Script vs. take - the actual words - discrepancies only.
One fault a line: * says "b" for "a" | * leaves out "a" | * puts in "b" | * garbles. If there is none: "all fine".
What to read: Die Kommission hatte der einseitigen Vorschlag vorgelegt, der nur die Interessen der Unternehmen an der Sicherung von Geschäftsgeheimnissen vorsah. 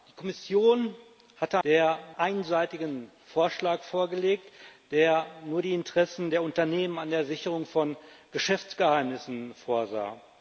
all fine